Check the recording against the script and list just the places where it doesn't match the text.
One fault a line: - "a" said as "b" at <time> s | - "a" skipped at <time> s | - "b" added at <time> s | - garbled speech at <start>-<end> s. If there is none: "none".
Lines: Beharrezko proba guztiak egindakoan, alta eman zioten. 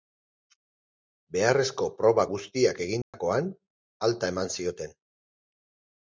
none